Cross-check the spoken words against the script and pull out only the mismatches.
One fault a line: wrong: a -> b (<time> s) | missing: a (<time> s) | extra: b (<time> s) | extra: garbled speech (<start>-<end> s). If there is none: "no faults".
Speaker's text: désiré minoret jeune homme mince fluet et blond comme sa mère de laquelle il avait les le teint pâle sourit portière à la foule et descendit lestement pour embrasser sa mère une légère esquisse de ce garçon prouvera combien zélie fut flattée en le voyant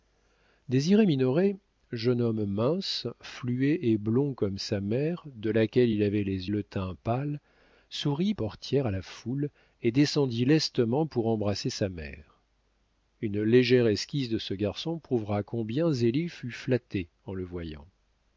no faults